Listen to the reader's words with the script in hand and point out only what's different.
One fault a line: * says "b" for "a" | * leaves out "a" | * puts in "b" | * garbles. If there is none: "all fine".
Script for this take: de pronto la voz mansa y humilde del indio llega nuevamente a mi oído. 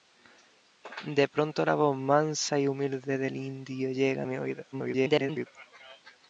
* leaves out "nuevamente"
* garbles